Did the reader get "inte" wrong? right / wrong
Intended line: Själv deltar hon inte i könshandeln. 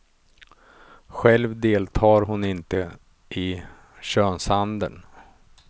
right